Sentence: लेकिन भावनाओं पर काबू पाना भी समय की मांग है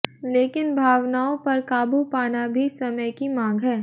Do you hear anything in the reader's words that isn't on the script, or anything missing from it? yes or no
no